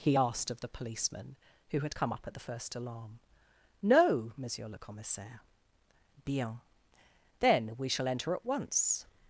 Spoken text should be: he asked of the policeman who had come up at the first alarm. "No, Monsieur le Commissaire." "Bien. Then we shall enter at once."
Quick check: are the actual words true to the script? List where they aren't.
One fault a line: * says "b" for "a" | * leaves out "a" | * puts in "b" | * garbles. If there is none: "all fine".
all fine